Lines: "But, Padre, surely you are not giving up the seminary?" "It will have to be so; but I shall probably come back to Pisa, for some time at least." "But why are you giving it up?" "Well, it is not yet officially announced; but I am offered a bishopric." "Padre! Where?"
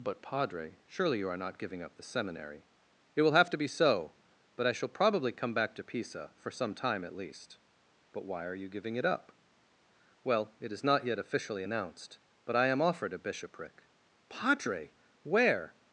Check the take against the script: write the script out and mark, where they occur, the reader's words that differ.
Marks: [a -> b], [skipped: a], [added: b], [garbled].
"But, Padre, surely you are not giving up the seminary?" "It will have to be so; but I shall probably come back to Pisa, for some time at least." "But why are you giving it up?" "Well, it is not yet officially announced; but I am offered a bishopric." "Padre! Where?"